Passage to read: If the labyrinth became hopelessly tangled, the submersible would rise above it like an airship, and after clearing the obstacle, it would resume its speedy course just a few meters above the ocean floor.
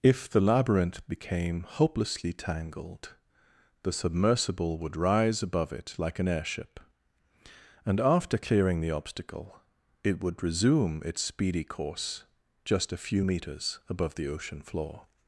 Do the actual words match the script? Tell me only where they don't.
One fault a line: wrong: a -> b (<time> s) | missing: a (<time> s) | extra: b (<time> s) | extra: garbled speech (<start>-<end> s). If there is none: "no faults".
no faults